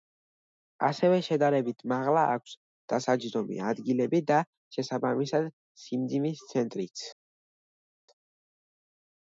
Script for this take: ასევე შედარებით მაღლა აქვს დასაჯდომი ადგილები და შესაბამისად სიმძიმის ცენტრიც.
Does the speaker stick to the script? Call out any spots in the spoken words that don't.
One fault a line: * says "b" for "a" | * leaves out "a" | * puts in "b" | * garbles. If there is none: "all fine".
all fine